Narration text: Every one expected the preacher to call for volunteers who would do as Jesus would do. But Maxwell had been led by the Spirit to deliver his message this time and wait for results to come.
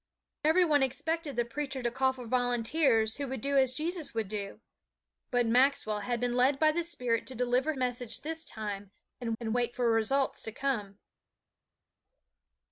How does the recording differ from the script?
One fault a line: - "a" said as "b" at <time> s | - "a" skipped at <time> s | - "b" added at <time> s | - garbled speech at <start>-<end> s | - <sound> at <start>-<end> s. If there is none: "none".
- "his" skipped at 7.7 s
- "and" added at 9.4 s